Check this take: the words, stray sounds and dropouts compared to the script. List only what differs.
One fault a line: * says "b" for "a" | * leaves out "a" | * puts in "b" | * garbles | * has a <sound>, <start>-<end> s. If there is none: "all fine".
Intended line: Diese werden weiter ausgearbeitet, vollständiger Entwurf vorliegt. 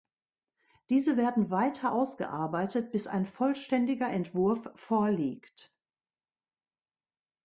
* puts in "bis ein"